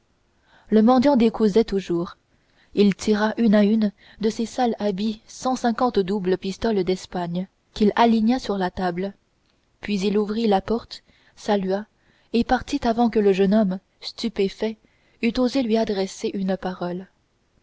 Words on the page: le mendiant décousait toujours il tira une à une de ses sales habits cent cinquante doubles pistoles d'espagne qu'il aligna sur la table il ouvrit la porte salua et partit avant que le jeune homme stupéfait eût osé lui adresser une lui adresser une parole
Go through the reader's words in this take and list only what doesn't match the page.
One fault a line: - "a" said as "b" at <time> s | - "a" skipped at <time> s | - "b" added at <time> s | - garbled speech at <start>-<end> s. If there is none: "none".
- "puis" added at 9.8 s
- "lui adresser une" skipped at 16.6 s